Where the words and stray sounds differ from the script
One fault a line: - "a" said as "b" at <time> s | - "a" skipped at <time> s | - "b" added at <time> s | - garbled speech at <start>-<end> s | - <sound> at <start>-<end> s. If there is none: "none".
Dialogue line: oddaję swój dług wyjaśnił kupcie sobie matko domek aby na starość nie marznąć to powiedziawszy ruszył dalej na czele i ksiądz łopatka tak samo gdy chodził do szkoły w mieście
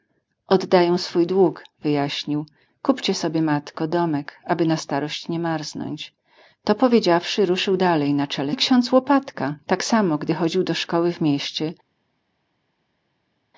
none